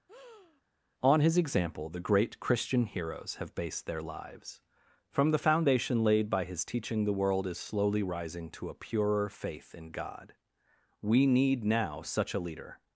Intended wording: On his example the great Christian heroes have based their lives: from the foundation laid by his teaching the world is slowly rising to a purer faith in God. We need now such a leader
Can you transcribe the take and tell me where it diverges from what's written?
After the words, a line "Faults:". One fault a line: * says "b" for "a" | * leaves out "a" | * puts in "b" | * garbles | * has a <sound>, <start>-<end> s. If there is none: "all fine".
On his example the great Christian heroes have based their lives: from the foundation laid by his teaching the world is slowly rising to a purer faith in God. We need now such a leader
Faults:
* has a breath, 0.1-0.6 s